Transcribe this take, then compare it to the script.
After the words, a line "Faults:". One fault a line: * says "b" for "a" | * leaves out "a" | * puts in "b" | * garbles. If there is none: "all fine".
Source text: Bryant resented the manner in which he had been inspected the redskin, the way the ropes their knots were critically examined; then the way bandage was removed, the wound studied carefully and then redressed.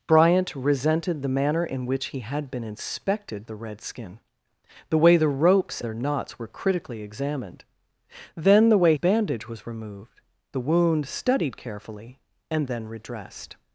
Bryant resented the manner in which he had been inspected the redskin, the way the ropes their knots were critically examined; then the way bandage was removed, the wound studied carefully and then redressed.
Faults:
all fine